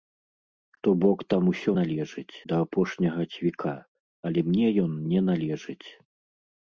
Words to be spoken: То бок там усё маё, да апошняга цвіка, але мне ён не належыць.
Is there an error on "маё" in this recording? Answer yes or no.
yes